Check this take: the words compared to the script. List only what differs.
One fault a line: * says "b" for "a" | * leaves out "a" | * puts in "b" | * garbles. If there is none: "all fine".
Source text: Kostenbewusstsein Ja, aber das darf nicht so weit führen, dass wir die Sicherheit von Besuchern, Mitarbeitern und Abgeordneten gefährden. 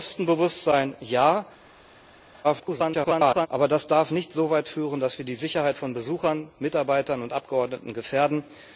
* garbles